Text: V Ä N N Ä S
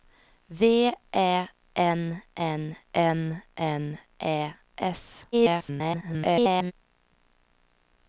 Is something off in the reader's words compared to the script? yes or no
yes